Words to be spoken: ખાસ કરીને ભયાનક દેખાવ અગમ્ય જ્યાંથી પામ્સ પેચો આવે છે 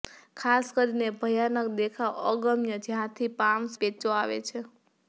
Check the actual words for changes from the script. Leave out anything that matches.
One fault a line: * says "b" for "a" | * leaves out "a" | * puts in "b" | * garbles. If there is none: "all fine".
all fine